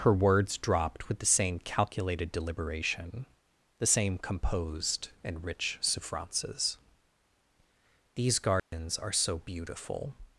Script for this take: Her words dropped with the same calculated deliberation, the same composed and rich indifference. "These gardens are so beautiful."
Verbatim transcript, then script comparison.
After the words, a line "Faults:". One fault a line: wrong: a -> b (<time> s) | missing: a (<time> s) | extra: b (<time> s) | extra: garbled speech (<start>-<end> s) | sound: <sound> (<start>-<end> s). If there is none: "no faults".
Her words dropped with the same calculated deliberation, the same composed and rich souffrances. "These gardens are so beautiful."
Faults:
wrong: indifference -> souffrances (5.8 s)
sound: dropout (8.6-8.7 s)